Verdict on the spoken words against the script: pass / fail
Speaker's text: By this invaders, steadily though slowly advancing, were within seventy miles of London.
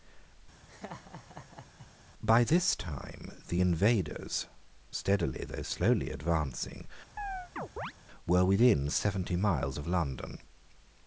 fail